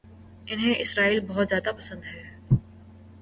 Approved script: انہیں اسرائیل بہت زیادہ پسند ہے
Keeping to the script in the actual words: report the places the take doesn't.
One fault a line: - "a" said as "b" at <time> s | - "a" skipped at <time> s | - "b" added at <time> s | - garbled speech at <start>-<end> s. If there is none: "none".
none